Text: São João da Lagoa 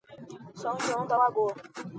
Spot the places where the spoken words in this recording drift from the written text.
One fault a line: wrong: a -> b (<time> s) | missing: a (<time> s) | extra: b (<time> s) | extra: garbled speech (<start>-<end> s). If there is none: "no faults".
no faults